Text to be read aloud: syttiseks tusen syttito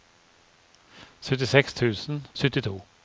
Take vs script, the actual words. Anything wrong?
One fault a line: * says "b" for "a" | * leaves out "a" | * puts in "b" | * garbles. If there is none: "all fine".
all fine